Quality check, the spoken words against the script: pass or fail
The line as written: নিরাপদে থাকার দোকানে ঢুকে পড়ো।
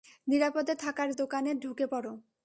pass